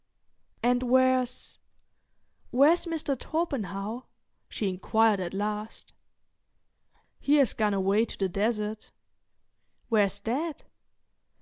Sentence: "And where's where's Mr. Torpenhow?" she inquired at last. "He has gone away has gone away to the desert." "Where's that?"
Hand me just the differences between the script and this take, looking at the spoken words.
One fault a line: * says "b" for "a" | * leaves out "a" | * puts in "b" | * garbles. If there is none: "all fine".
* leaves out "has gone away"